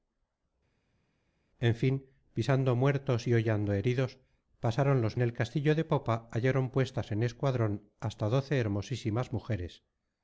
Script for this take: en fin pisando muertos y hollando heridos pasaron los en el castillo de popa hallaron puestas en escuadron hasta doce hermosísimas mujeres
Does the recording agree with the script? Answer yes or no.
yes